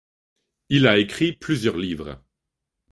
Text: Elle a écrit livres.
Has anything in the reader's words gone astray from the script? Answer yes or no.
yes